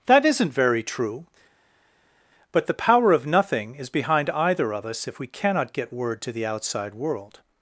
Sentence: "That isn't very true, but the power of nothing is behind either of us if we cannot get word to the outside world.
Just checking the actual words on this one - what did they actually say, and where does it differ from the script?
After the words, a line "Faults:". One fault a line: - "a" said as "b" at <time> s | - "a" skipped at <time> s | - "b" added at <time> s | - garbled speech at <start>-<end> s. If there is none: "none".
"That isn't very true, but the power of nothing is behind either of us if we cannot get word to the outside world.
Faults:
none